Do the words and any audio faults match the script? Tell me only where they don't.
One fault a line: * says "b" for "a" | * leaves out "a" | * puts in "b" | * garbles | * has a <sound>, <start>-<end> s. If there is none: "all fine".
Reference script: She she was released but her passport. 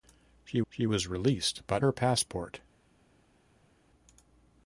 all fine